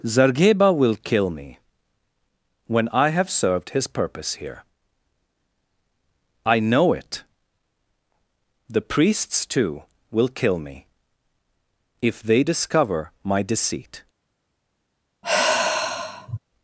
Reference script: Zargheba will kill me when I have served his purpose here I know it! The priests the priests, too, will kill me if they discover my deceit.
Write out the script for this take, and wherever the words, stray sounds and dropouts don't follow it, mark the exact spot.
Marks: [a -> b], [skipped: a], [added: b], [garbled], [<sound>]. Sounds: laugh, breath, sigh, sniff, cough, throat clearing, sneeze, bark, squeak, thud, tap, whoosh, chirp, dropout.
Zargheba will kill me when I have served his purpose here I know it! The priests [skipped: the priests,] too, will kill me if they discover my deceit. [sigh]